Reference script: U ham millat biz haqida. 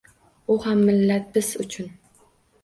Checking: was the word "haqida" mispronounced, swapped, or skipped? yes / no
yes